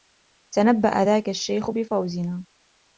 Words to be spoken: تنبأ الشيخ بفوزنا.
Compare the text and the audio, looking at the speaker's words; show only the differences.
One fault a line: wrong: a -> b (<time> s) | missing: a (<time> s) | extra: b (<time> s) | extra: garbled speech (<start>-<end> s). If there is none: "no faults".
extra: ذاك (1.0 s)